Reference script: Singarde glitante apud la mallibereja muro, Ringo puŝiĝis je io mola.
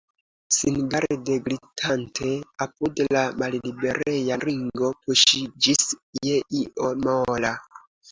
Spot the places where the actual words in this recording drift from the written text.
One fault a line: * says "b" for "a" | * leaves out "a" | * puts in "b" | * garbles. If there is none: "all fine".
* leaves out "muro"